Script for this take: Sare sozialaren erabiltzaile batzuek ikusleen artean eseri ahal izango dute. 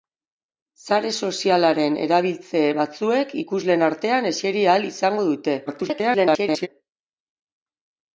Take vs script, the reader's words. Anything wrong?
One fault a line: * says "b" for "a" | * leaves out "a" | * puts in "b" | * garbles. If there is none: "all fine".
* garbles